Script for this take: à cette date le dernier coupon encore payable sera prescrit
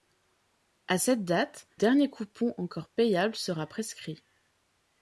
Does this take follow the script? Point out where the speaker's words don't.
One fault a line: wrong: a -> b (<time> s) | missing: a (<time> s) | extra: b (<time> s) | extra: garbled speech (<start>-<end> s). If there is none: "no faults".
missing: le (1.7 s)